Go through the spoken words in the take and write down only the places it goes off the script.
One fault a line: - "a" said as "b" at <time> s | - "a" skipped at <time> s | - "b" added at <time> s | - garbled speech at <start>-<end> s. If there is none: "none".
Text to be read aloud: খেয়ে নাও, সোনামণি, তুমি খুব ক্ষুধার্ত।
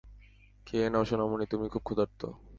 none